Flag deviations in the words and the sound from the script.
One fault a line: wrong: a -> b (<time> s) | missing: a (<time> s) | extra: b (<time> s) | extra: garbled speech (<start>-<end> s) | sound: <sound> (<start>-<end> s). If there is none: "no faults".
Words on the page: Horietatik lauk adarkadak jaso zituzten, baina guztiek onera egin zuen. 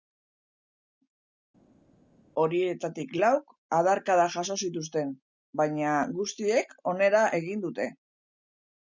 wrong: zuen -> dute (7.7 s)